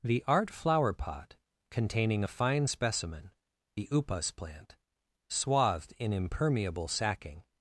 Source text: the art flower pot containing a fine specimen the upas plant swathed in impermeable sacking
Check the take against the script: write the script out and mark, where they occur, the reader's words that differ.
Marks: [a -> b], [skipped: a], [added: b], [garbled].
the art flower pot containing a fine specimen the upas plant swathed in impermeable sacking